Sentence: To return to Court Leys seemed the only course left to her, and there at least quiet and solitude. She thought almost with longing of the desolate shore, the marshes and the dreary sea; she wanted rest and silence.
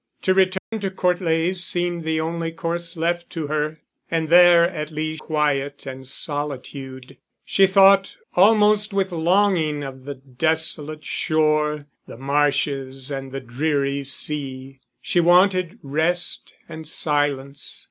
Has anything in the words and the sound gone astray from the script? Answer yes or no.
yes